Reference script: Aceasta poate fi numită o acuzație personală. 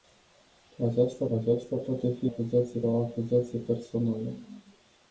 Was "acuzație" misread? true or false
false